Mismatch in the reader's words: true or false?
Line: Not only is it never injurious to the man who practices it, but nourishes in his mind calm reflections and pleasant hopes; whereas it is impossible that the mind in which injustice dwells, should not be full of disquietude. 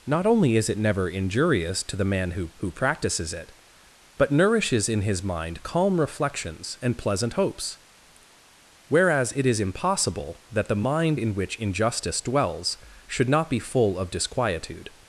true